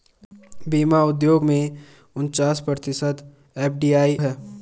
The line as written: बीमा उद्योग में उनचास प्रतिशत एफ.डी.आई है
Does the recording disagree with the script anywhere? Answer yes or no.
no